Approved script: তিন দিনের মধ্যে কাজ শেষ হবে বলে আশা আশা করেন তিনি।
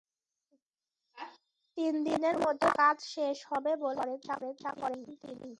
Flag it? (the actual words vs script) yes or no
no